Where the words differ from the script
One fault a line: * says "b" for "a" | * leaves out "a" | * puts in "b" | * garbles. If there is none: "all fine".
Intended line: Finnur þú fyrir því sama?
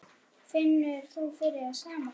all fine